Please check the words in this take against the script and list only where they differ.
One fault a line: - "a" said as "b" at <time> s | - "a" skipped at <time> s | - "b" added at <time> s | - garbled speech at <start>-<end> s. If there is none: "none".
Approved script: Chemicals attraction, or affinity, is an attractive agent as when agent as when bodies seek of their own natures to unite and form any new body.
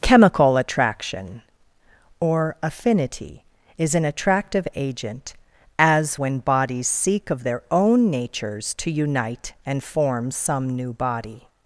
- "Chemicals" said as "Chemical" at 0.0 s
- "agent as when" skipped at 6.4 s
- "any" said as "some" at 10.3 s